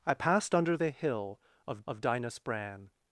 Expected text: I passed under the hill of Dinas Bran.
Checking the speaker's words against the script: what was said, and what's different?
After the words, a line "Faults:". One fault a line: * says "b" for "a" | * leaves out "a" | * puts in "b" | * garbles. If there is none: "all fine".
I passed under the hill of of Dinas Bran.
Faults:
* puts in "of"